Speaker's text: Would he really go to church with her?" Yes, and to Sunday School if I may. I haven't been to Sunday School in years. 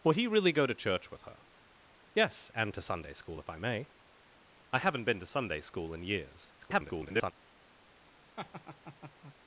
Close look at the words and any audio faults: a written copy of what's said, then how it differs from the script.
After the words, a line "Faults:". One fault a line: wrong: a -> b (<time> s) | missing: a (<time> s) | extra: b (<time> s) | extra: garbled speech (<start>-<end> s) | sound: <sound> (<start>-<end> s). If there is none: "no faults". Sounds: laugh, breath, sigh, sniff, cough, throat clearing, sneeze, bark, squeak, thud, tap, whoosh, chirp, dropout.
Would he really go to church with her?" Yes, and to Sunday School if I may. I haven't been to Sunday School in years. [garbled]
Faults:
extra: garbled speech (6.6-7.3 s)
sound: laugh (8.4-9.3 s)